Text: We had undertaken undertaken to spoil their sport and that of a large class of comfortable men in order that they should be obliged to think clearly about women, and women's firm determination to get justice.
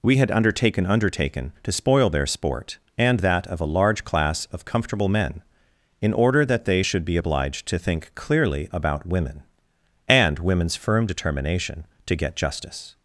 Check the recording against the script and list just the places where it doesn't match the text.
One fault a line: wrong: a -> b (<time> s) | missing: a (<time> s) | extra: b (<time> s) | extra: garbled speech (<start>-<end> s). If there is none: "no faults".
no faults